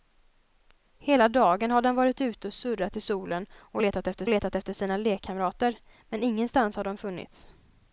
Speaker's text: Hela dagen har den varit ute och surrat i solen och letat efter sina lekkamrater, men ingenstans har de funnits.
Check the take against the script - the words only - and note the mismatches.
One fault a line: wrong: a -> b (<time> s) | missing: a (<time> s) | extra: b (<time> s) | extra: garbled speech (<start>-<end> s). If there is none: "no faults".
extra: letat efter (4.3 s)